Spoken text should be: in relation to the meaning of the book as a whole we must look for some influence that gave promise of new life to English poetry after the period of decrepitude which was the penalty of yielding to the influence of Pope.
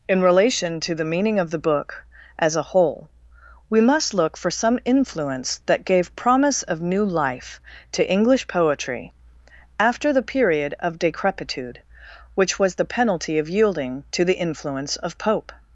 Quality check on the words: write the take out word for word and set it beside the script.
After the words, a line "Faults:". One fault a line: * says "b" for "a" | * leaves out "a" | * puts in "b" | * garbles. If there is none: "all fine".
in relation to the meaning of the book as a whole we must look for some influence that gave promise of new life to English poetry after the period of decrepitude which was the penalty of yielding to the influence of Pope.
Faults:
all fine